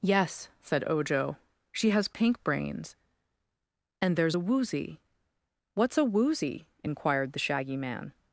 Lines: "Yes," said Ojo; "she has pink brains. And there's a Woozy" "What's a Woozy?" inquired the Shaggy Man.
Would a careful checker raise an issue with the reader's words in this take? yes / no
no